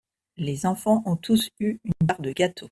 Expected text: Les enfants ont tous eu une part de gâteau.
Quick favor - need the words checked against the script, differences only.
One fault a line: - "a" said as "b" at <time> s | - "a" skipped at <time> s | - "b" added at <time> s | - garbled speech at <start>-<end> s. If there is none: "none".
none